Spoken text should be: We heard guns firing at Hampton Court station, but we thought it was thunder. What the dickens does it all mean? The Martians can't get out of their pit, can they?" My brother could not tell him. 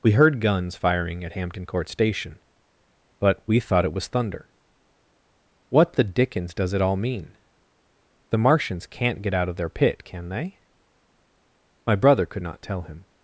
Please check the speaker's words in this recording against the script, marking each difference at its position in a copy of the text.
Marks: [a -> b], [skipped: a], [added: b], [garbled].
We heard guns firing at Hampton Court station, but we thought it was thunder. What the dickens does it all mean? The Martians can't get out of their pit, can they?" My brother could not tell him.